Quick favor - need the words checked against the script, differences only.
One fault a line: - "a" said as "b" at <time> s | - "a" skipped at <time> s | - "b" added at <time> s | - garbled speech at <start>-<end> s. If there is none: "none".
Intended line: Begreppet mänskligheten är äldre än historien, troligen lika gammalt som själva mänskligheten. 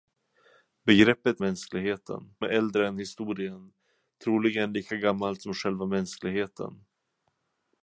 none